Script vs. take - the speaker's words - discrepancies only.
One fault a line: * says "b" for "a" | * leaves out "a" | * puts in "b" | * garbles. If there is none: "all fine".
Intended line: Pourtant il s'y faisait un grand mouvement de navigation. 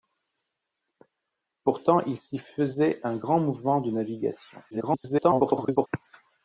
* garbles